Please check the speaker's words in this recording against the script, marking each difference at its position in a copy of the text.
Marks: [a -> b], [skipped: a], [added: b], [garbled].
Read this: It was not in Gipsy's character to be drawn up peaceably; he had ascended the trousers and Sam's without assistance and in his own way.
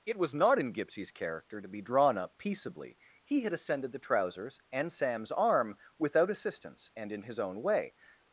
It was not in Gipsy's character to be drawn up peaceably; he had ascended the trousers and Sam's [added: arm] without assistance and in his own way.